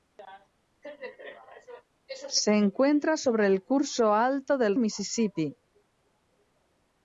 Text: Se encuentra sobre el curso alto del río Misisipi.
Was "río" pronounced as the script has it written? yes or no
no